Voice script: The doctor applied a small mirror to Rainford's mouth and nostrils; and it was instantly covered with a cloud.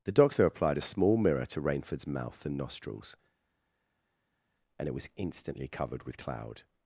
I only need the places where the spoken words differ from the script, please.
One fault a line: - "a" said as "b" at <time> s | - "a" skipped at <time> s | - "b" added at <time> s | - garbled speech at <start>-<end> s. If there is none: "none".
- "a" skipped at 6.2 s